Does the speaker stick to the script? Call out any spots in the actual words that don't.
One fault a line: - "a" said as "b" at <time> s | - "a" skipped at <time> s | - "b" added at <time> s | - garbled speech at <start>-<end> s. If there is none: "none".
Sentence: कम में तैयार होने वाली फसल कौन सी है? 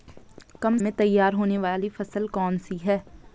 none